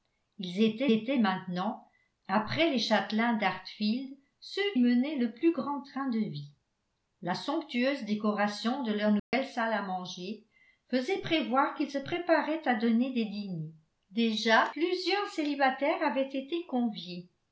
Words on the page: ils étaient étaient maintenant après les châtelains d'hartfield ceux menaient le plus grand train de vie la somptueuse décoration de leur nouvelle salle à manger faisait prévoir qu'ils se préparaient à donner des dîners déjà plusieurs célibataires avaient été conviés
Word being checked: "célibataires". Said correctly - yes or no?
yes